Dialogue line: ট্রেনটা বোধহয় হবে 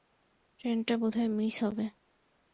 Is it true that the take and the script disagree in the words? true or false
true